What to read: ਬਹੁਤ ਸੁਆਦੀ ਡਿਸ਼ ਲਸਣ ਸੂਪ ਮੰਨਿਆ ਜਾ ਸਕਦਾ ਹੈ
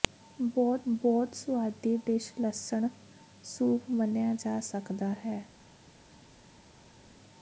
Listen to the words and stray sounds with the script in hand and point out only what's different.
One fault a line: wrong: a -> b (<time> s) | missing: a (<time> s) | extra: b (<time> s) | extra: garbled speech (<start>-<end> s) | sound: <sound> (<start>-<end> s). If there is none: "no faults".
extra: ਬਹੁਤ (0.9 s)